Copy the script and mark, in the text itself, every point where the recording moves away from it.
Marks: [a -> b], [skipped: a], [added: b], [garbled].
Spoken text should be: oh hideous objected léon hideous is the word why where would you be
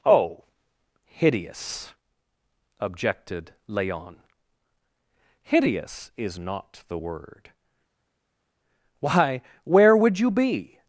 oh hideous objected léon hideous is [added: not] the word why where would you be